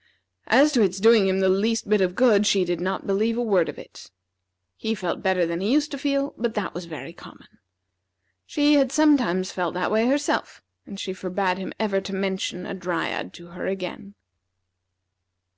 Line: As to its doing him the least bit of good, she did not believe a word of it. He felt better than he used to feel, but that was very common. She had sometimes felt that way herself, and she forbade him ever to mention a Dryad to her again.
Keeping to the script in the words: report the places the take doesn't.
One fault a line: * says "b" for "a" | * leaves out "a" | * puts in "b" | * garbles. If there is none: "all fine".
all fine